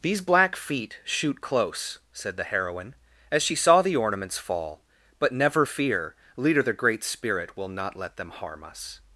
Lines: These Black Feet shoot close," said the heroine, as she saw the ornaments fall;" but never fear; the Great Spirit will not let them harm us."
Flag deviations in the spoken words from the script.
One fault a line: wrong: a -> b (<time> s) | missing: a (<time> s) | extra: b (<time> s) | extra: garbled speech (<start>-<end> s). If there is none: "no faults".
extra: leader (6.4 s)